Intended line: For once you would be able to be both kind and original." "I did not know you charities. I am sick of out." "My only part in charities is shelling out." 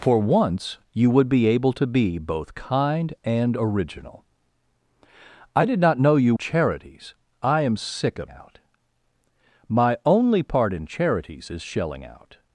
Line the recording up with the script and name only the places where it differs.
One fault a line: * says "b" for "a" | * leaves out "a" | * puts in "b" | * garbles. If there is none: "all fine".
all fine